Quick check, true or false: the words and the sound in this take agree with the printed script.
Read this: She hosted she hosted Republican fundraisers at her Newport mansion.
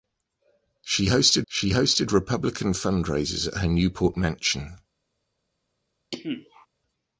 false